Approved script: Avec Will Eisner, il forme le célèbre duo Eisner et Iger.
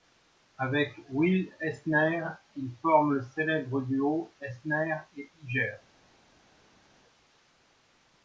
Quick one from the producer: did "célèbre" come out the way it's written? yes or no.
yes